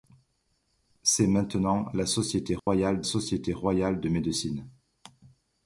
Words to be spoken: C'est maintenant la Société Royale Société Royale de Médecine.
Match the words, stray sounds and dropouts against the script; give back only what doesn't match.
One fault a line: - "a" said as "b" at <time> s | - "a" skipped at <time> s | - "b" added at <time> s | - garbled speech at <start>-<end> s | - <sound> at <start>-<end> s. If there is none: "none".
- dropout at 2.6-2.7 s